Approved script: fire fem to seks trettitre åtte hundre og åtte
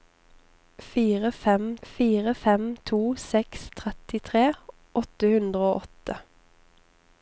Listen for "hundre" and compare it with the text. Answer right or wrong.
right